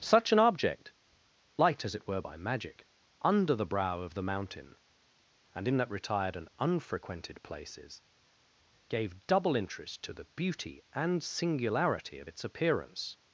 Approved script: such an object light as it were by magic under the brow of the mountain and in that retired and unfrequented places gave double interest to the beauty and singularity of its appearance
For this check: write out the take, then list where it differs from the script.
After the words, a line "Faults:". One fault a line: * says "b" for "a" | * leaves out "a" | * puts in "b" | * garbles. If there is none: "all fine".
such an object light as it were by magic under the brow of the mountain and in that retired and unfrequented places gave double interest to the beauty and singularity of its appearance
Faults:
all fine